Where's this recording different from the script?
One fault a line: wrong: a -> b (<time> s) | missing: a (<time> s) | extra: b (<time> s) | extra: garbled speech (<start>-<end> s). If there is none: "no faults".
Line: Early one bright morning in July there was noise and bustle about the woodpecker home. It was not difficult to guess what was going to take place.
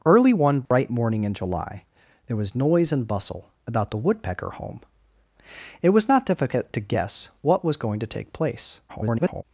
extra: garbled speech (8.9-9.4 s)